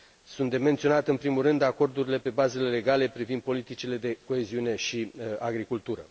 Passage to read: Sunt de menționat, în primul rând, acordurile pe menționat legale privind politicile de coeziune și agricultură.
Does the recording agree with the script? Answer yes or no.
no